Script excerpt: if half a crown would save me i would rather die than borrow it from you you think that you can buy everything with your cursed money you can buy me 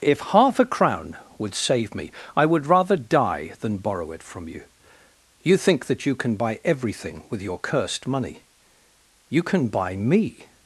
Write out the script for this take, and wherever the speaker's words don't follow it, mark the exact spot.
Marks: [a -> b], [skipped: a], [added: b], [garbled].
if half a crown would save me i would rather die than borrow it from you you think that you can buy everything with your cursed money you can buy me